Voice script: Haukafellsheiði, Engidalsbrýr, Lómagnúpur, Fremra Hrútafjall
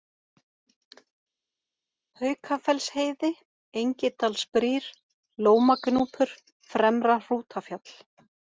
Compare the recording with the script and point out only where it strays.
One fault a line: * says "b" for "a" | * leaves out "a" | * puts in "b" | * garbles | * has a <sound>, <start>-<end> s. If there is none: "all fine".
all fine